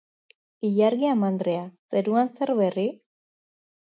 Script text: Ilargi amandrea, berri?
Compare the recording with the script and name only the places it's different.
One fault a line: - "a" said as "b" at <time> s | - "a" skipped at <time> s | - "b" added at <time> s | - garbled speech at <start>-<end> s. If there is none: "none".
- "zeruan zer" added at 2.0 s